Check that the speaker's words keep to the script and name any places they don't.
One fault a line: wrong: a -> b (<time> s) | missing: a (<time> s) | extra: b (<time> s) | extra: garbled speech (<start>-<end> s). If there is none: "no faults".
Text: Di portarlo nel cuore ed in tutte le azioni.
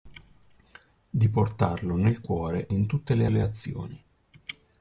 missing: ed (2.7 s)
extra: le (3.3 s)